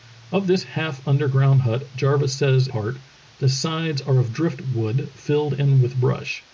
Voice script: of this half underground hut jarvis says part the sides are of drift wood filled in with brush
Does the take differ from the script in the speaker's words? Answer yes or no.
no